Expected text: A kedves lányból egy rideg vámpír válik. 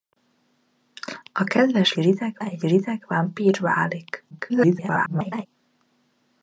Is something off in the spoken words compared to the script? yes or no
yes